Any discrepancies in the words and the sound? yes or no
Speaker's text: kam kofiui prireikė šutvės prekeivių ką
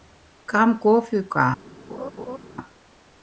yes